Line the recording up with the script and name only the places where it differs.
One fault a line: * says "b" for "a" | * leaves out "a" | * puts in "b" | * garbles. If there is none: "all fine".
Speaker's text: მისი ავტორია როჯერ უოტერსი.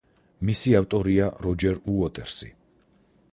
all fine